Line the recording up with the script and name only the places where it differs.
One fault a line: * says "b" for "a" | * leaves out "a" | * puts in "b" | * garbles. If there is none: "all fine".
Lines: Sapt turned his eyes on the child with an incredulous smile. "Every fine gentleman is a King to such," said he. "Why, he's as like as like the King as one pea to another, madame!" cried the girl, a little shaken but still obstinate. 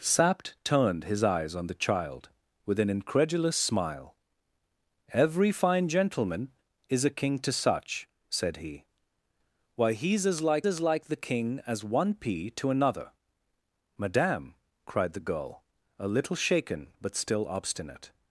all fine